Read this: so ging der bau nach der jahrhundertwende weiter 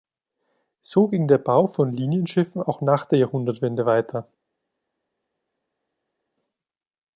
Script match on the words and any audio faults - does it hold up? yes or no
no